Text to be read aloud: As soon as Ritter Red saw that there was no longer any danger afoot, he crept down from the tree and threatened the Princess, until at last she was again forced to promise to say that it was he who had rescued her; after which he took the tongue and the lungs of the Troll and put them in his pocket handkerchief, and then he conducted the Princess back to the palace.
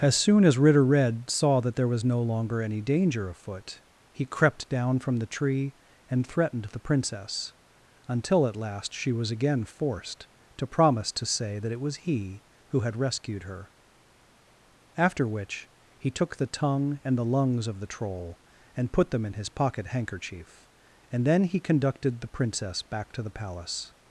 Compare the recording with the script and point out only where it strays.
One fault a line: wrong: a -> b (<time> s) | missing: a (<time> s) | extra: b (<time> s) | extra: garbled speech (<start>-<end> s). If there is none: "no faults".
no faults